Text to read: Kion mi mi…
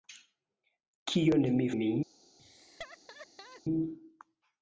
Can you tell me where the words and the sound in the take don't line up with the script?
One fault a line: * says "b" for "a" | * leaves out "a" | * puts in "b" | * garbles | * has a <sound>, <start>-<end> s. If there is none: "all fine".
* has a laugh, 2.4-3.6 s